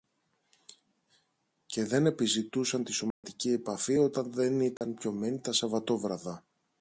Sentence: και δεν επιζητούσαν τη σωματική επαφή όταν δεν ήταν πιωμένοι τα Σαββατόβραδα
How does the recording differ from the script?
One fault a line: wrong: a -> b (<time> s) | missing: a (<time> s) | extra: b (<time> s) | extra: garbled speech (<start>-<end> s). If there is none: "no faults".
no faults